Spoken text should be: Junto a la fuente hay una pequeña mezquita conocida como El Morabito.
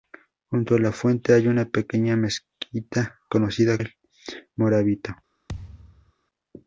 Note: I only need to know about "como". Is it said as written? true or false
false